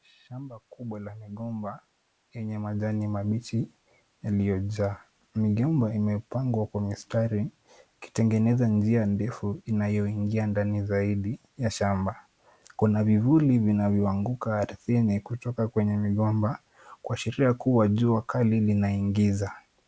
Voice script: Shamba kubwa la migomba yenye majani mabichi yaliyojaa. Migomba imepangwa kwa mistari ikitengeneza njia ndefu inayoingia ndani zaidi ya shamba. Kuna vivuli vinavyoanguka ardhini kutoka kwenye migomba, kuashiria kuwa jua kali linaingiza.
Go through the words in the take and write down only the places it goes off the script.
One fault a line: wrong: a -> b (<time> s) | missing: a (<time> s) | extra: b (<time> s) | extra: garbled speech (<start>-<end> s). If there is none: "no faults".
no faults